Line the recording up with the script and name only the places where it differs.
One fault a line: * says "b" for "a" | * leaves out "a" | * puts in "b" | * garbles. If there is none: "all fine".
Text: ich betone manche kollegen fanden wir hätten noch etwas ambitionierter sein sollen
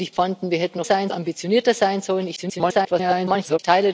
* leaves out "betone manche kollegen"
* says "sein" for "etwas"
* garbles